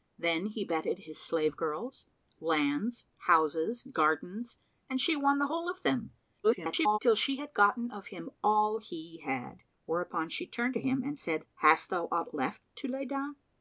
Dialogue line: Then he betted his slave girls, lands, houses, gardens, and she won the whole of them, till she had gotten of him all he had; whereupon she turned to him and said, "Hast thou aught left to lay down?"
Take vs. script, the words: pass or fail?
fail